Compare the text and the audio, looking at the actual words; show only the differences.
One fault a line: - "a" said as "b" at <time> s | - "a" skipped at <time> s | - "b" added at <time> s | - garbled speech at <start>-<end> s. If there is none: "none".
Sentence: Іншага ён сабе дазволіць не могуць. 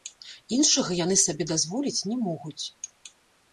- "ён" said as "яны" at 1.0 s